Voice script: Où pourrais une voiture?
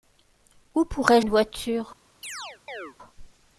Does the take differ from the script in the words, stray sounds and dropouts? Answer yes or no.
yes